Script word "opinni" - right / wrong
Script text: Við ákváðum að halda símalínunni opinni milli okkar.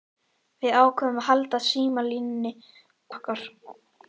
wrong